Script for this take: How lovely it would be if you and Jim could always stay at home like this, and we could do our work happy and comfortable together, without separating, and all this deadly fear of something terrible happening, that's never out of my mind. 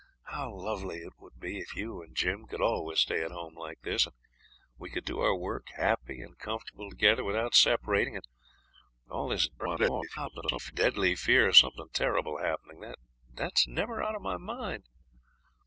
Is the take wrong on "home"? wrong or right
right